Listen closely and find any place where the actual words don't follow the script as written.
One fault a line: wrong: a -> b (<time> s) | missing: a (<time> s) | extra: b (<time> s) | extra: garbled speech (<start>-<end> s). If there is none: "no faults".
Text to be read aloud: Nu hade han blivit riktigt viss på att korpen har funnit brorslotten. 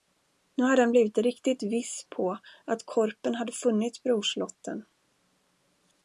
wrong: har -> hade (3.4 s)